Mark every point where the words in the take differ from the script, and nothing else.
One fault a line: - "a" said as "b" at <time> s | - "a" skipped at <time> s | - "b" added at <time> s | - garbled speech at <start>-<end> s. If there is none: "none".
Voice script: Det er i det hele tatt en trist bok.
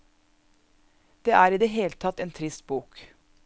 none